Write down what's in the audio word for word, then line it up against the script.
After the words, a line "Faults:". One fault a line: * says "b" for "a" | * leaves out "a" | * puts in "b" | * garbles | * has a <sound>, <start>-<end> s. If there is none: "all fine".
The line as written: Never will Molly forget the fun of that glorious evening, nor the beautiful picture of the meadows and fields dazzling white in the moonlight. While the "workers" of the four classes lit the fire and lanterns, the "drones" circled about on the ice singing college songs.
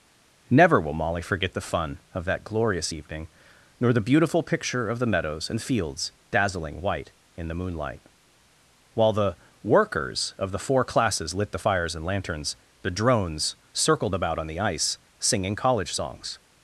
Never will Molly forget the fun of that glorious evening, nor the beautiful picture of the meadows and fields dazzling white in the moonlight. While the "workers" of the four classes lit the fires and lanterns, the "drones" circled about on the ice singing college songs.
Faults:
* says "fires" for "fire"